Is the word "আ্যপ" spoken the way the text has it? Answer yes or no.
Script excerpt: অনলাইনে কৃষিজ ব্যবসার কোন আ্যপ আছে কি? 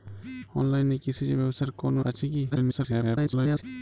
no